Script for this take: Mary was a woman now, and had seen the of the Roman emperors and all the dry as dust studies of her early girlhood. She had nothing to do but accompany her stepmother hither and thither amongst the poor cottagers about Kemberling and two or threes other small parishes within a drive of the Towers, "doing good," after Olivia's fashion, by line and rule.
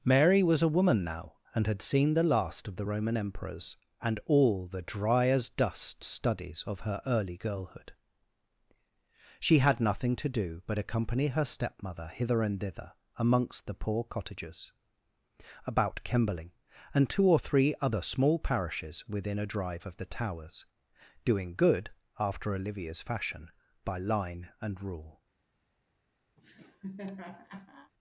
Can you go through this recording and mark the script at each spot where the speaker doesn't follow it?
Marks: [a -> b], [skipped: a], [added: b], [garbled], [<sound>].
Mary was a woman now, and had seen the [added: last] of the Roman emperors and all the dry as dust studies of her early girlhood. She had nothing to do but accompany her stepmother hither and thither amongst the poor cottagers about Kemberling and two or [threes -> three] other small parishes within a drive of the Towers, "doing good," after Olivia's fashion, by line and rule. [laugh]